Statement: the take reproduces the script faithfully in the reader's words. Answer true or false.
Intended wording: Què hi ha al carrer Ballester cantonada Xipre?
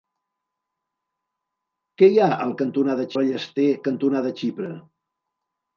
false